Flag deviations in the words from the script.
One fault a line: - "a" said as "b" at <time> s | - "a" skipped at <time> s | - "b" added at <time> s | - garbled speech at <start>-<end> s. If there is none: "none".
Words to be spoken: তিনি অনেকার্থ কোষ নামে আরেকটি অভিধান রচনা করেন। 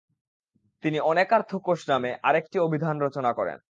none